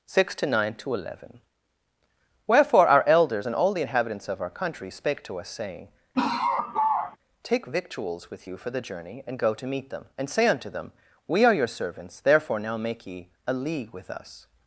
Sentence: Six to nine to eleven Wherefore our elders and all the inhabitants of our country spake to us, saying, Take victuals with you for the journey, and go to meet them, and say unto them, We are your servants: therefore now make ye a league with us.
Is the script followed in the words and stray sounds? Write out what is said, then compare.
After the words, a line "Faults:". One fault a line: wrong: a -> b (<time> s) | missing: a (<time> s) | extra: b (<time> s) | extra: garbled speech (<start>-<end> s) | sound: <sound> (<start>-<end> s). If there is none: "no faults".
Six to nine to eleven Wherefore our elders and all the inhabitants of our country spake to us, saying, Take victuals with you for the journey, and go to meet them, and say unto them, We are your servants: therefore now make ye a league with us.
Faults:
sound: laugh (6.1-7.2 s)